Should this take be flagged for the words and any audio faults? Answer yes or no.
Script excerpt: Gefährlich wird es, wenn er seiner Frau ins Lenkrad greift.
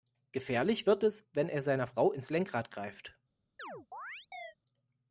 yes